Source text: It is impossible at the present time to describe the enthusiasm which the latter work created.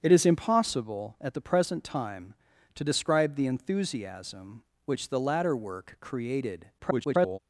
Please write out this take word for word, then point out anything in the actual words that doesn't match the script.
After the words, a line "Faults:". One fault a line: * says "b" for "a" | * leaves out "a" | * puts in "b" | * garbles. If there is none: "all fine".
It is impossible at the present time to describe the enthusiasm which the latter work created. [garbled]
Faults:
* garbles